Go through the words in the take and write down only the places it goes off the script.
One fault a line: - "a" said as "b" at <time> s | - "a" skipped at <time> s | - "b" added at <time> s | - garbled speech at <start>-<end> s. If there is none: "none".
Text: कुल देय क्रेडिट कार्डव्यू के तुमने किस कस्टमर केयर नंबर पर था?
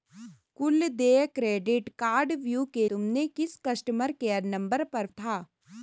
none